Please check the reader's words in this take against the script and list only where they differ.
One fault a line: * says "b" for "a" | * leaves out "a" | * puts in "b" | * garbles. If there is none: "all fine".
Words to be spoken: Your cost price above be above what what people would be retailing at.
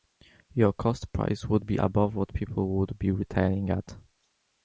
* says "would" for "above"
* leaves out "what"